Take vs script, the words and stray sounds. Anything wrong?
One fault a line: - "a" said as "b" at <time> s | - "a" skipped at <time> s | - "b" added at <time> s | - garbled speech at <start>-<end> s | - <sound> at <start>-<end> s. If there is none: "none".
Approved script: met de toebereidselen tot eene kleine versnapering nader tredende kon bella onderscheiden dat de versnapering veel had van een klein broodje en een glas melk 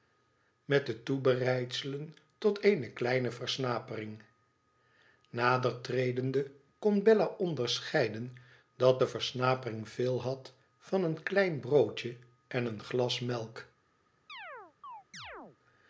- chirp at 14.3-15.6 s